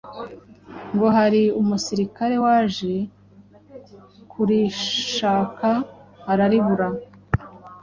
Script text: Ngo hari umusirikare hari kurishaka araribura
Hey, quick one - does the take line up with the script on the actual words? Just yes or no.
no